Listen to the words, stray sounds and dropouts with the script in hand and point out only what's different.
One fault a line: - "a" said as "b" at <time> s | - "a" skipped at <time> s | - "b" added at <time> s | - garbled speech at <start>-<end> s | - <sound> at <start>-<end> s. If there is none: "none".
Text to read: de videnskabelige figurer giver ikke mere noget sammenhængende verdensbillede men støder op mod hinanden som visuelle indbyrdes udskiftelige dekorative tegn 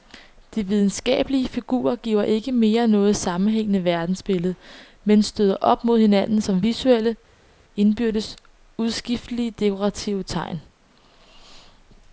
none